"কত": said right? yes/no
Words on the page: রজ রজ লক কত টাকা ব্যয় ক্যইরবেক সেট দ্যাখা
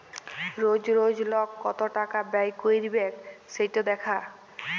yes